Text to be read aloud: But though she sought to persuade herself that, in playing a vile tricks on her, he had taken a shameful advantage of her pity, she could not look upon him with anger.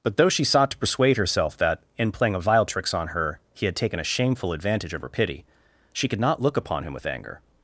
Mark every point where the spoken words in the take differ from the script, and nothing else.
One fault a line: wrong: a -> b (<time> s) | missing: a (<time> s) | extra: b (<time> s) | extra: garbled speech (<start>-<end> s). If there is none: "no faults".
no faults